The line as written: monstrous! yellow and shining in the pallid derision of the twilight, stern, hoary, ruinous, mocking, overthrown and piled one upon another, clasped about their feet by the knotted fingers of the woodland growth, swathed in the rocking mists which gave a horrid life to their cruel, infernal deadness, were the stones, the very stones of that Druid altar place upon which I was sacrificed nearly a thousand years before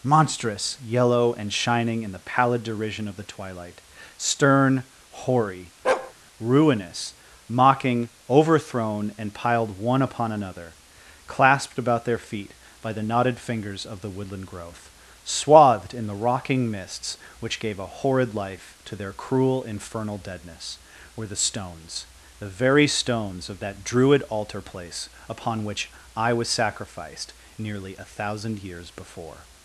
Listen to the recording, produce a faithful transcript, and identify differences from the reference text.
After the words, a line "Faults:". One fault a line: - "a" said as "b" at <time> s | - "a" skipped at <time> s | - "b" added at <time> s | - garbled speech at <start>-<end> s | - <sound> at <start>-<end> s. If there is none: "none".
monstrous! yellow and shining in the pallid derision of the twilight, stern, hoary, ruinous, mocking, overthrown and piled one upon another, clasped about their feet by the knotted fingers of the woodland growth, swathed in the rocking mists which gave a horrid life to their cruel, infernal deadness, were the stones, the very stones of that Druid altar place upon which I was sacrificed nearly a thousand years before
Faults:
- bark at 5.8-6.1 s